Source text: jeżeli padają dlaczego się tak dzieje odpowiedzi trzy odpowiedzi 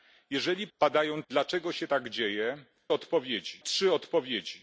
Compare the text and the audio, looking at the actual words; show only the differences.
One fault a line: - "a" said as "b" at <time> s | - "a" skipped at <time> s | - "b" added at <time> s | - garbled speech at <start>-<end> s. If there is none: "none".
none